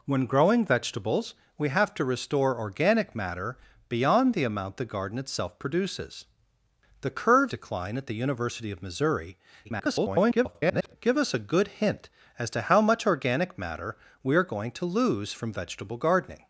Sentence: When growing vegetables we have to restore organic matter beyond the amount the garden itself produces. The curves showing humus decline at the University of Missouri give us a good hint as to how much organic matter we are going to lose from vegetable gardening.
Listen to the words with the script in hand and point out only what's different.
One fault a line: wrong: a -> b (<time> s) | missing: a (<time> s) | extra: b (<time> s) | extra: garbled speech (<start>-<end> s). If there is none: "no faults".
missing: showing humus (7.5 s)
extra: garbled speech (9.6-11.0 s)